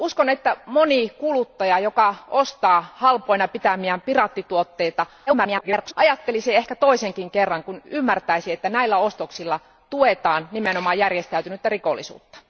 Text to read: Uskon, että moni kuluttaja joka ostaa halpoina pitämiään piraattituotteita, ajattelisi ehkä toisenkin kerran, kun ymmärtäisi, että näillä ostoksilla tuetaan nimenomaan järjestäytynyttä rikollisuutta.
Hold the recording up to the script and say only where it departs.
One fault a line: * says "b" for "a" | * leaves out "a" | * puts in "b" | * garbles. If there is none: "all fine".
* garbles